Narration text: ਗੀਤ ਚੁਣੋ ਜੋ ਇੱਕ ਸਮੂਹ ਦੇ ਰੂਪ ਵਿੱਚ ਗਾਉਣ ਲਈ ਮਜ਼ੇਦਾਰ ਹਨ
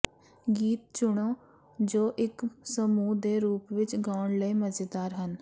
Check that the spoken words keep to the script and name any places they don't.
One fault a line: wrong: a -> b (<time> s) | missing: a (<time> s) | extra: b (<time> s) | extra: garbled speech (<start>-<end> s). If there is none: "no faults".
no faults